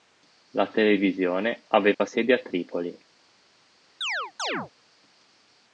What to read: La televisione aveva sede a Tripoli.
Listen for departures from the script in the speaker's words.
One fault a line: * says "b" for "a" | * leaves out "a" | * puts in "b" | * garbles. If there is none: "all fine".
all fine